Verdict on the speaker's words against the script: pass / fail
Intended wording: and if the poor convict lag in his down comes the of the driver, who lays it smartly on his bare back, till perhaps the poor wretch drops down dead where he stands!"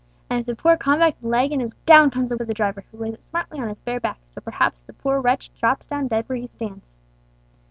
pass